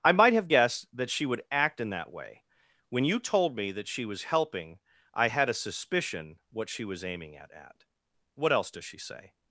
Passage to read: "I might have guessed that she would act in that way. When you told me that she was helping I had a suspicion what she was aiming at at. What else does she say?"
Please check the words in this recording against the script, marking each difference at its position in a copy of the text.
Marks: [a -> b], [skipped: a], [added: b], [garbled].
"I might have guessed that she would act in that way. When you told me that she was helping I had a suspicion what she was aiming at at. What else does she say?"